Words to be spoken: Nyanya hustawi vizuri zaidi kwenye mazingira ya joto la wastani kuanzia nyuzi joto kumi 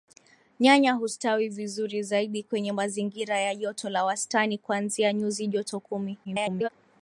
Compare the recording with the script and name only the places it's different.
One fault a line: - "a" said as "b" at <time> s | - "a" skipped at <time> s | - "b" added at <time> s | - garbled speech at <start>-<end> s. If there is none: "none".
- garbled speech at 6.2-6.7 s